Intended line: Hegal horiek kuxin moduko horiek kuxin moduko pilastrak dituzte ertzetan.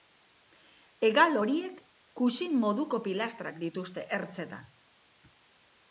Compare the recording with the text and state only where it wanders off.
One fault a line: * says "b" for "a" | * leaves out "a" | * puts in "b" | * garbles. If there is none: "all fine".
* leaves out "horiek kuxin moduko"